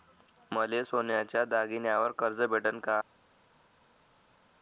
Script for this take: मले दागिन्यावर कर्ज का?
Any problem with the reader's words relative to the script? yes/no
yes